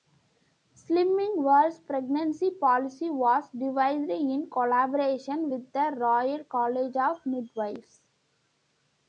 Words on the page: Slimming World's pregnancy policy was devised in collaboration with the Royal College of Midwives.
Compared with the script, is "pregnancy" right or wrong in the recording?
right